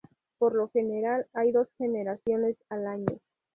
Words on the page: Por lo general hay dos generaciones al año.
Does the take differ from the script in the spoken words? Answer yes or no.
no